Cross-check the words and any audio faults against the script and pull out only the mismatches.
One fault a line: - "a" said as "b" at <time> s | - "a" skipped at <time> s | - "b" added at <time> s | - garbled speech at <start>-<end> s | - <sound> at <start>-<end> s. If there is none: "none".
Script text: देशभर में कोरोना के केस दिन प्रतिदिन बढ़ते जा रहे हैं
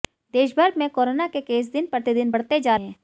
- "रहे" skipped at 2.8 s